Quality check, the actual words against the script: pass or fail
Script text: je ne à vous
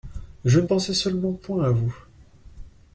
fail